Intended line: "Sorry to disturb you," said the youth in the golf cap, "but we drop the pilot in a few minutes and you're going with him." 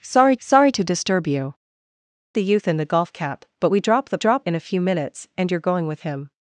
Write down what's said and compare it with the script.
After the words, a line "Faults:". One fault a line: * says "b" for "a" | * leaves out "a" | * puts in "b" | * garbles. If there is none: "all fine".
"Sorry sorry to disturb you," the youth in the golf cap, "but we drop the drop in a few minutes and you're going with him."
Faults:
* puts in "sorry"
* leaves out "said"
* says "drop" for "pilot"